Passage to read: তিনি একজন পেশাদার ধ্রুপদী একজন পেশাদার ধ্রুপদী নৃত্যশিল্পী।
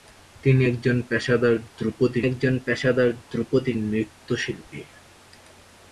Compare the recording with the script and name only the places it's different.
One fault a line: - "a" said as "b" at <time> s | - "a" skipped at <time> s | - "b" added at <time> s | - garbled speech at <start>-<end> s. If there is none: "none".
none